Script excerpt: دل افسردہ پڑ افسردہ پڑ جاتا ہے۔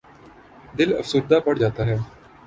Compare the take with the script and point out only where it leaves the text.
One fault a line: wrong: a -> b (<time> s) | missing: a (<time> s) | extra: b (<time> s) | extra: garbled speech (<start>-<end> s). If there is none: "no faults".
missing: افسردہ پڑ (1.5 s)